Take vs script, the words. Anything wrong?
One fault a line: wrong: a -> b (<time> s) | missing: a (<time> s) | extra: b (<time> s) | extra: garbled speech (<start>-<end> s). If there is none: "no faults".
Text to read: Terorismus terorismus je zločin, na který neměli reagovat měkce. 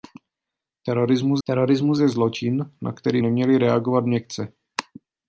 no faults